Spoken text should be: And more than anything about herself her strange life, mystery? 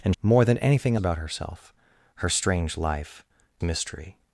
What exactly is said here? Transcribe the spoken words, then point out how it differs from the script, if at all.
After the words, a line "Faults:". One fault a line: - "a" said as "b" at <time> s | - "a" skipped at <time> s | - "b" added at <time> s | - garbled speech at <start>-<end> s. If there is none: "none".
And more than anything about herself her strange life, mystery?
Faults:
none